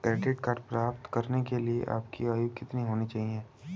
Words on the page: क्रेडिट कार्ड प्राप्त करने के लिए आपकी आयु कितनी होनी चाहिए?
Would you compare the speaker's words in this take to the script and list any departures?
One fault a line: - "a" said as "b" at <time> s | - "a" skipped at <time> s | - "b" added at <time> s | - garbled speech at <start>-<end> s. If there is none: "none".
none